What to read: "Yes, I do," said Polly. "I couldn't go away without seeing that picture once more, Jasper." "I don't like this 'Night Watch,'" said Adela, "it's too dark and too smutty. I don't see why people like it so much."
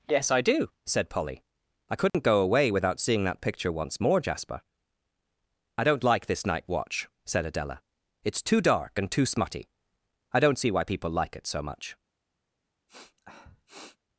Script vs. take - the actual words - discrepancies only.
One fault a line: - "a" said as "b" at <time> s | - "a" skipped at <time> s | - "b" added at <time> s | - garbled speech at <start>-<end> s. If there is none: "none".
none